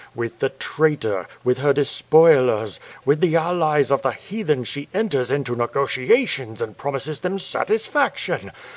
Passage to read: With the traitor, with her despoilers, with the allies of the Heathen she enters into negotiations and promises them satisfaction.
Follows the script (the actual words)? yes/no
yes